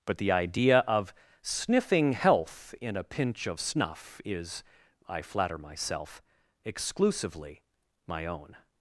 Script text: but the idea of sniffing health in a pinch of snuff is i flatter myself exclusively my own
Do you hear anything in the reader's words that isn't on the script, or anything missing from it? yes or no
no